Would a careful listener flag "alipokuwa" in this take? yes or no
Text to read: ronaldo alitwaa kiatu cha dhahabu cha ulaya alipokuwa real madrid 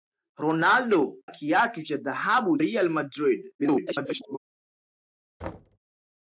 yes